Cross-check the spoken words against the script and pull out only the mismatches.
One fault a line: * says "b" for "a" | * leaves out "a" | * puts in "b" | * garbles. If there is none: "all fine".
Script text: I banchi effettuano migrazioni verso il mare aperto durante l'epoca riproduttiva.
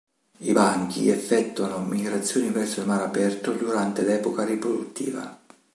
all fine